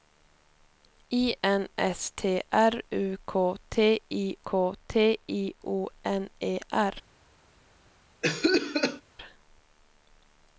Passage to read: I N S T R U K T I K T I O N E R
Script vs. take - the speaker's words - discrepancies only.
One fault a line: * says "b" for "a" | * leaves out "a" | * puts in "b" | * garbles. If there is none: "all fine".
all fine